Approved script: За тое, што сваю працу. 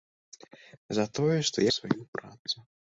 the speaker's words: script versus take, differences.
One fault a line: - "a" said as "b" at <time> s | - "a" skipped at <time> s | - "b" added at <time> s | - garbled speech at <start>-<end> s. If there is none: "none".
none